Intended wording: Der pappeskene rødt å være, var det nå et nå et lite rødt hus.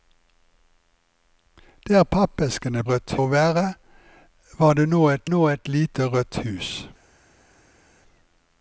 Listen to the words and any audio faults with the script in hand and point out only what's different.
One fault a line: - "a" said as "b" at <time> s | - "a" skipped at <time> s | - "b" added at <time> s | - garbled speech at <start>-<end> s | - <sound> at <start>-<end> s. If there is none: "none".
none